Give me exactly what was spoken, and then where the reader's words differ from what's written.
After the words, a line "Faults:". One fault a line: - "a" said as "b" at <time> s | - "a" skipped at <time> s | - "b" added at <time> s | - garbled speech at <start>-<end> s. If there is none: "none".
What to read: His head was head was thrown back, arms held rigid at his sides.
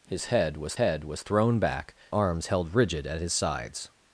His head was head was thrown back, arms held rigid at his sides.
Faults:
none